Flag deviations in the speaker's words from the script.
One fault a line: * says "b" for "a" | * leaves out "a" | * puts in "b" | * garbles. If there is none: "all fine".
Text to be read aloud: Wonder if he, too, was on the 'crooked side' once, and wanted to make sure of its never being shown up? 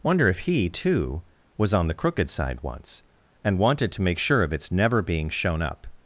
all fine